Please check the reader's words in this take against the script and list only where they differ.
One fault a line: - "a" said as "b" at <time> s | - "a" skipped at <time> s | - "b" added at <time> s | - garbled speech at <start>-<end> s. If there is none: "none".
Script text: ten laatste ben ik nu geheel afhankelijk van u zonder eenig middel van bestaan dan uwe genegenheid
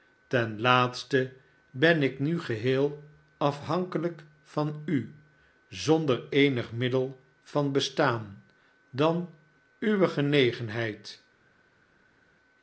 none